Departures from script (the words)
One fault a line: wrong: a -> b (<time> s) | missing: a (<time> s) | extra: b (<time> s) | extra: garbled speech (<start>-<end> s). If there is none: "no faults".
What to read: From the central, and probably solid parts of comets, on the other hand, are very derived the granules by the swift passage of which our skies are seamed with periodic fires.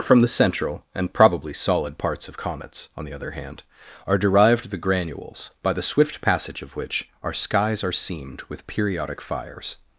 missing: very (4.2 s)